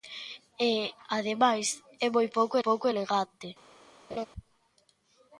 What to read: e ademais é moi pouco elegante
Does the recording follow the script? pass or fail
fail